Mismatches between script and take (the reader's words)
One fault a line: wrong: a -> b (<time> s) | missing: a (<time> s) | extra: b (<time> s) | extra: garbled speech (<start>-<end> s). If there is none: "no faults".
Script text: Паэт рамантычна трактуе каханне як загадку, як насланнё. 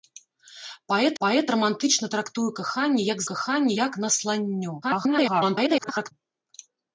extra: паэт (1.2 s)
wrong: загадку -> каханне (3.3 s)
extra: garbled speech (4.8-6.1 s)